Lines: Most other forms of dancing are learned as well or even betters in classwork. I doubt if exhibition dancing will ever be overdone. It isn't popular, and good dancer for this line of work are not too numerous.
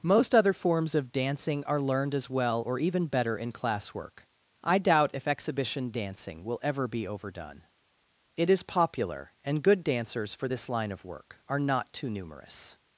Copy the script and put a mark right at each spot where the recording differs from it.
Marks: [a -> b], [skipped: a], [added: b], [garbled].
Most other forms of dancing are learned as well or even [betters -> better] in classwork. I doubt if exhibition dancing will ever be overdone. It [isn't -> is] popular, and good [dancer -> dancers] for this line of work are not too numerous.